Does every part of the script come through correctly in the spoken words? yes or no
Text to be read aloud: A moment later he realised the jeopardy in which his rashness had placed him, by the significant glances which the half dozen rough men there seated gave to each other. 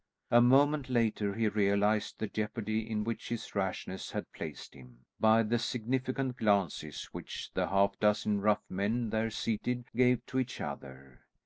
yes